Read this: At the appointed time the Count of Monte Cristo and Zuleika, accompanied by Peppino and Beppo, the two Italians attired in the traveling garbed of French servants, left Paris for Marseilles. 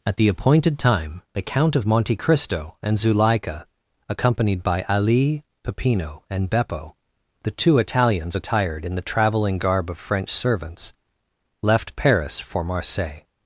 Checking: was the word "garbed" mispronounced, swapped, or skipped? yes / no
yes